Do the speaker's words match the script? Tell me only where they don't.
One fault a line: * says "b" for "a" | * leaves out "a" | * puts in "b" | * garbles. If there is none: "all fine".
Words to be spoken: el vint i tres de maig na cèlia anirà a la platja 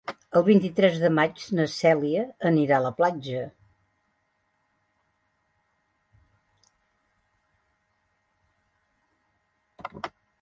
all fine